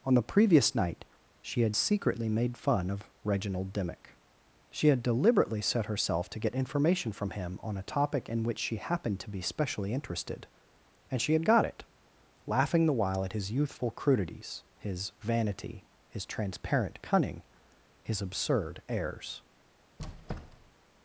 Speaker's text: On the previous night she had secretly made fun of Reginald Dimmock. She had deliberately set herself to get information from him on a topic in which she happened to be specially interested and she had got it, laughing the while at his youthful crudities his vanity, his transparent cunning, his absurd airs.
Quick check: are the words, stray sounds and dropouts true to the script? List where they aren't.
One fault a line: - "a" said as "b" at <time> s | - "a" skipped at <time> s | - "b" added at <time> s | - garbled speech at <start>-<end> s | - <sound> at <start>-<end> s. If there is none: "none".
- squeak at 20.0-20.8 s